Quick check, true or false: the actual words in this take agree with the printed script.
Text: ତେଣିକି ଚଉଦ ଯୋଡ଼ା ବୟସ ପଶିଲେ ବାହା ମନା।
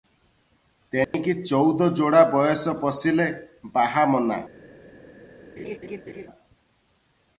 true